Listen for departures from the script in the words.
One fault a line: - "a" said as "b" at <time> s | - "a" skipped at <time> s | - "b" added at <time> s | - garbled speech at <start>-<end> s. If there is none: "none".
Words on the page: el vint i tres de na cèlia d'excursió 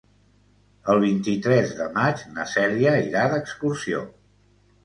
- "maig" added at 2.0 s
- "irà" added at 3.1 s